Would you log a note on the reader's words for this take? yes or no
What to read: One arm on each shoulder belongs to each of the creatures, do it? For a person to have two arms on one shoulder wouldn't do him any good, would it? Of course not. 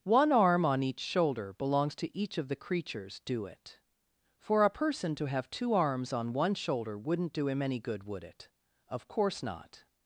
no